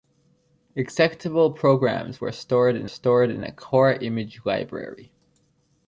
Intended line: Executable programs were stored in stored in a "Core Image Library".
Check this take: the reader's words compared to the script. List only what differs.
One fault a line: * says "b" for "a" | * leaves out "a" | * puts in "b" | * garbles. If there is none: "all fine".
all fine